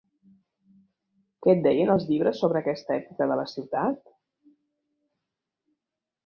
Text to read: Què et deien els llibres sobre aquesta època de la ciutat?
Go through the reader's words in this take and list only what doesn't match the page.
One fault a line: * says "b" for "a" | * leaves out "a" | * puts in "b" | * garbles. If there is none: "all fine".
all fine